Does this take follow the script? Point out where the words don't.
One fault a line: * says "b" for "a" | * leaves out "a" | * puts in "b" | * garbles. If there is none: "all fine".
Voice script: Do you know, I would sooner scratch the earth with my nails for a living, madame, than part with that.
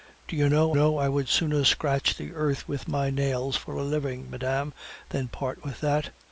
* puts in "know"